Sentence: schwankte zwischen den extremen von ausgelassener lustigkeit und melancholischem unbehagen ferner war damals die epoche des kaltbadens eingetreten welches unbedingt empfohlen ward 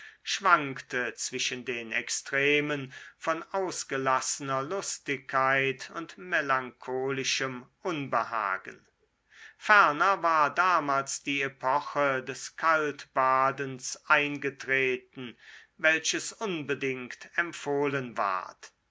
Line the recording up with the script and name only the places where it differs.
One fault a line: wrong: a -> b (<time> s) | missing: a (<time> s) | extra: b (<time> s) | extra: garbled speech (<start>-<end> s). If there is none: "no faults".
no faults